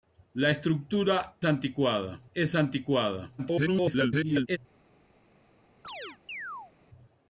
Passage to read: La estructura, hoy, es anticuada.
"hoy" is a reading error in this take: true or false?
true